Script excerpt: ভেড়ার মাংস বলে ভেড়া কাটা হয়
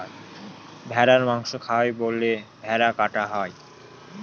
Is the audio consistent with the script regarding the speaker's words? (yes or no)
no